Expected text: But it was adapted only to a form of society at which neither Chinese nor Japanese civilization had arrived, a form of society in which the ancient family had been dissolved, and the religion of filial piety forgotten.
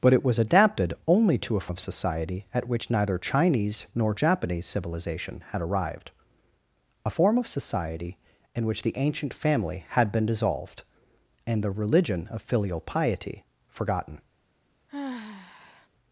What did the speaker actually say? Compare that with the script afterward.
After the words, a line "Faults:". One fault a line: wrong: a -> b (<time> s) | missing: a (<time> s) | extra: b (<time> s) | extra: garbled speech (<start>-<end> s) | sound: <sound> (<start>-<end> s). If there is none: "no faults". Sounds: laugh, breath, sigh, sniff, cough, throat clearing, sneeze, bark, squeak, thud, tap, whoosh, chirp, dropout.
But it was adapted only to a of society at which neither Chinese nor Japanese civilization had arrived, a form of society in which the ancient family had been dissolved, and the religion of filial piety forgotten.
Faults:
missing: form (1.7 s)
sound: sigh (14.9-15.9 s)